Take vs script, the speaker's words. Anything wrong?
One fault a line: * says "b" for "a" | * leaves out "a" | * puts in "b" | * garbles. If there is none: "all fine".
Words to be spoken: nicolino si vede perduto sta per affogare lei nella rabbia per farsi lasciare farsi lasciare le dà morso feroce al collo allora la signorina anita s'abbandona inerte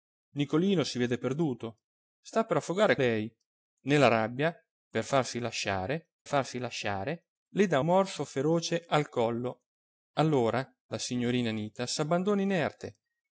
all fine